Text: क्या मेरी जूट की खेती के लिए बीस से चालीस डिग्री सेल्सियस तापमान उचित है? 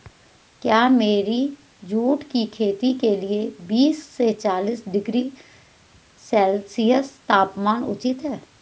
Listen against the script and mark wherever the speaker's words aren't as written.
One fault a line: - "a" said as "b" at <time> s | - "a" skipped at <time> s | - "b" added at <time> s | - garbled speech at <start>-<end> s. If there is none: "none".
none